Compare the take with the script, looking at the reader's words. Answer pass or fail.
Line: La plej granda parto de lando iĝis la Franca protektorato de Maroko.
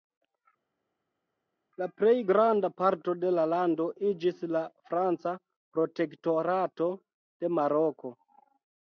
fail